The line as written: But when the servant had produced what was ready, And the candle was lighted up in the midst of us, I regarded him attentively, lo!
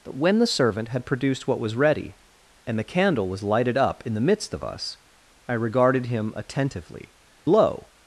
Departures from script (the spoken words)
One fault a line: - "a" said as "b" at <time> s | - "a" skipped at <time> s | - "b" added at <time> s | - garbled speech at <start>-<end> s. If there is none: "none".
none